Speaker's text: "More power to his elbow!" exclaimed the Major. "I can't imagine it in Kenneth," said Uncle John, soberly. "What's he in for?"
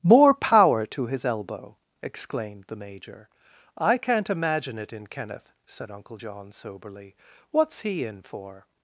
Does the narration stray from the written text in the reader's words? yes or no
no